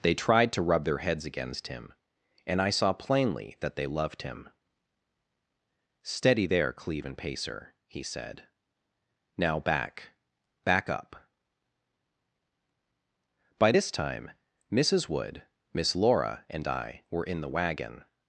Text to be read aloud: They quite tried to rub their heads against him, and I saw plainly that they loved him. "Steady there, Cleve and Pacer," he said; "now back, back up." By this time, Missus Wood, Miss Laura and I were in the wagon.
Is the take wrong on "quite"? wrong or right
wrong